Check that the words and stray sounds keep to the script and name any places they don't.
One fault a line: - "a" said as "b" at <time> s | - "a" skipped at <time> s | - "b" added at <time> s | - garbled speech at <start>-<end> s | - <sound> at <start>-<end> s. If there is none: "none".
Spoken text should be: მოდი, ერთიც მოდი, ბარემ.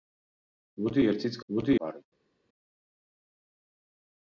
none